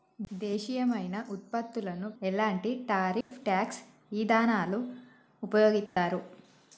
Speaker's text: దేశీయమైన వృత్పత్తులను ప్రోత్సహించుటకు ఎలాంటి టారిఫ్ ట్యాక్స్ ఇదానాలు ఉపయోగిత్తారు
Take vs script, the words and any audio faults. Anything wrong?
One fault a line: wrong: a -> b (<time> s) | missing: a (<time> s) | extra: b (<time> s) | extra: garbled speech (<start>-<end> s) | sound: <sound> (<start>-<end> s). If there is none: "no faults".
missing: ప్రోత్సహించుటకు (2.1 s)
sound: dropout (3.2-3.3 s)
sound: dropout (5.9-6.0 s)